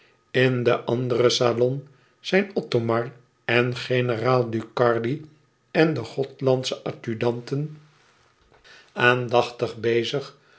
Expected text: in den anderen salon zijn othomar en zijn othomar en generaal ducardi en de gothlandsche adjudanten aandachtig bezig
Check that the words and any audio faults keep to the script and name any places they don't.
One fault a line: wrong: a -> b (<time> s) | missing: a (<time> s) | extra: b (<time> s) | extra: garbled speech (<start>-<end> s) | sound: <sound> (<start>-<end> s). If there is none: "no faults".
missing: zijn othomar en (3.8 s)